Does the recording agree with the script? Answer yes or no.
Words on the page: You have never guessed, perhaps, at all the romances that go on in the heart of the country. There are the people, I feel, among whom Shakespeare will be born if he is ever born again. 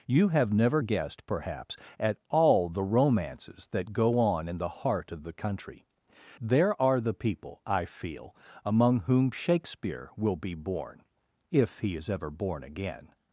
yes